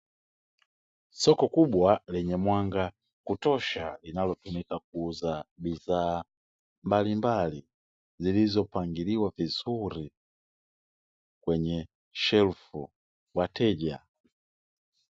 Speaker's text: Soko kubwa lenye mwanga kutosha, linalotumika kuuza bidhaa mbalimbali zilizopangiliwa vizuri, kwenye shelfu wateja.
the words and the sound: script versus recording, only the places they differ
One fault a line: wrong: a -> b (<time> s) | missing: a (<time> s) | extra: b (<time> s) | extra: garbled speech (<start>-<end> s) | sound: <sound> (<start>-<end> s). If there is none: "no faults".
no faults